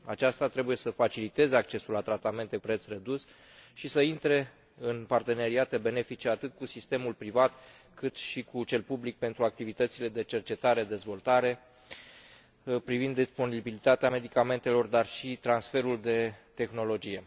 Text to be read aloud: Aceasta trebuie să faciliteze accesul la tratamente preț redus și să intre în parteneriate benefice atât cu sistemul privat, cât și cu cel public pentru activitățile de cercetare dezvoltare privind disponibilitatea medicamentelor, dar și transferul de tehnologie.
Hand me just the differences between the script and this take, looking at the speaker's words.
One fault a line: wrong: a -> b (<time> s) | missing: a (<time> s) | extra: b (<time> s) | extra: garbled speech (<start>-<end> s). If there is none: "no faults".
no faults